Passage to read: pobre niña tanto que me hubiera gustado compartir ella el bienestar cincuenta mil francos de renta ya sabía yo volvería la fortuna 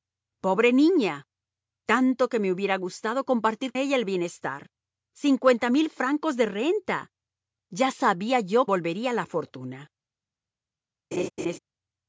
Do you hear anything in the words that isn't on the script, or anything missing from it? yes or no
no